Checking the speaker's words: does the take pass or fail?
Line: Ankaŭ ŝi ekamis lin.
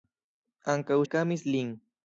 fail